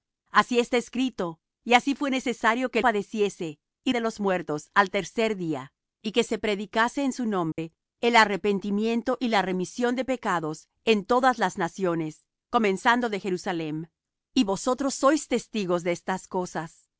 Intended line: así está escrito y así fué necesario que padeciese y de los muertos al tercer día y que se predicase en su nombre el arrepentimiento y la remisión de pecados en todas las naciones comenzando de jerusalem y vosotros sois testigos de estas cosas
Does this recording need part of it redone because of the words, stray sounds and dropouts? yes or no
yes